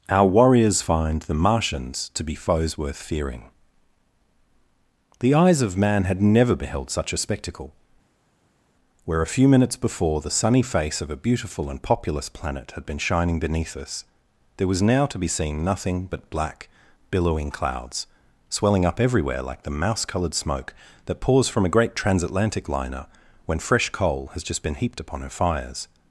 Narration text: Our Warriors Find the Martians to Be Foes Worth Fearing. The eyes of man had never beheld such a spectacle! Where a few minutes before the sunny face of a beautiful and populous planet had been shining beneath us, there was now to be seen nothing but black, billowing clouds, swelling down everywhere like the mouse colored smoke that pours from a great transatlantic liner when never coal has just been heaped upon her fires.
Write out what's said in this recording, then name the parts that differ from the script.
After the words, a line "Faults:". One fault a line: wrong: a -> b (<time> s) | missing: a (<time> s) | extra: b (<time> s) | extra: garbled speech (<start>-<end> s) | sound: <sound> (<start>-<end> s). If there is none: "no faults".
Our Warriors Find the Martians to Be Foes Worth Fearing. The eyes of man had never beheld such a spectacle! Where a few minutes before the sunny face of a beautiful and populous planet had been shining beneath us, there was now to be seen nothing but black, billowing clouds, swelling up everywhere like the mouse colored smoke that pours from a great transatlantic liner when fresh coal has just been heaped upon her fires.
Faults:
wrong: down -> up (18.8 s)
wrong: never -> fresh (23.6 s)